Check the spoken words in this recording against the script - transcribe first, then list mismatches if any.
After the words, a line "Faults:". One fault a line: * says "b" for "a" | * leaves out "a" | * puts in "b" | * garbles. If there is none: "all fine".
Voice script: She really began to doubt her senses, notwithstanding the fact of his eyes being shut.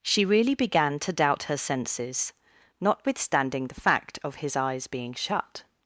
She really began to doubt her senses, notwithstanding the fact of his eyes being shut.
Faults:
all fine